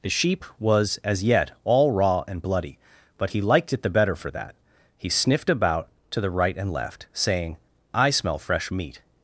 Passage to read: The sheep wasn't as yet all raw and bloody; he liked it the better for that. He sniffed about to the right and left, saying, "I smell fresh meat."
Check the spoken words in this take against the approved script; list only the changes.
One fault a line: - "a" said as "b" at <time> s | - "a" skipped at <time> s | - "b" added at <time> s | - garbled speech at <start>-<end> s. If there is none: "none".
- "wasn't" said as "was" at 0.6 s
- "but" added at 3.2 s